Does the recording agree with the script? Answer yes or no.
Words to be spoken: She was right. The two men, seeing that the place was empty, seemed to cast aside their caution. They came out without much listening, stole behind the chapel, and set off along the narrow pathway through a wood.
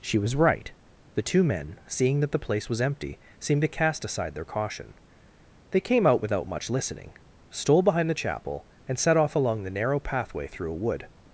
yes